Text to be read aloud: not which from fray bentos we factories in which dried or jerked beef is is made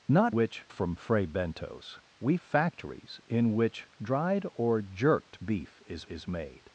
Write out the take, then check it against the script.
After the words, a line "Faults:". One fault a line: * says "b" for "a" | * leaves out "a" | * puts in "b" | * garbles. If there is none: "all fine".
not which from fray bentos we factories in which dried or jerked beef is is made
Faults:
all fine